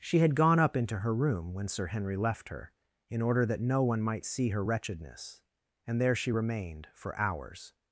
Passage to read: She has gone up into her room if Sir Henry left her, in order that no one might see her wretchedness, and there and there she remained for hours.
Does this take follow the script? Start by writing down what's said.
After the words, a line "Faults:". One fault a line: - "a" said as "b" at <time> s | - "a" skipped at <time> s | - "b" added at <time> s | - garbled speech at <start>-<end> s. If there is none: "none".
She had gone up into her room when Sir Henry left her, in order that no one might see her wretchedness, and there she remained for hours.
Faults:
- "has" said as "had" at 0.2 s
- "if" said as "when" at 1.5 s
- "and there" skipped at 6.2 s